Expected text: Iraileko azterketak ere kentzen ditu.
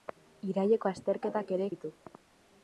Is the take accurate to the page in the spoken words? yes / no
no